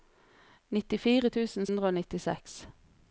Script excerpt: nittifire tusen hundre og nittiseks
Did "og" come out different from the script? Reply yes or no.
no